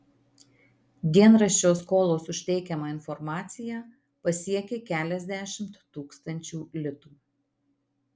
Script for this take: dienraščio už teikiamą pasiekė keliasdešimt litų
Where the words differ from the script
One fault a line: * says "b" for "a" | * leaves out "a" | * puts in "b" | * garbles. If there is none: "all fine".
* puts in "skolos"
* puts in "informaciją"
* puts in "tūkstančių"